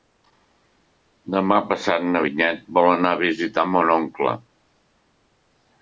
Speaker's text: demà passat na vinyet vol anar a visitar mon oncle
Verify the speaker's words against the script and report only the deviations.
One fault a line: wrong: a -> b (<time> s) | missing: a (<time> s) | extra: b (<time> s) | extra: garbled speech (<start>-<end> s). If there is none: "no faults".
no faults